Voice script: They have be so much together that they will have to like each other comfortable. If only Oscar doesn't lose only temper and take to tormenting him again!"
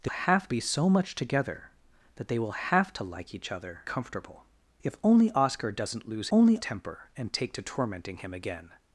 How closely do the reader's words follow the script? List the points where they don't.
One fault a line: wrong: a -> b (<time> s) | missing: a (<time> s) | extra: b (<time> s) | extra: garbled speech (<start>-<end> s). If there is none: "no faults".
no faults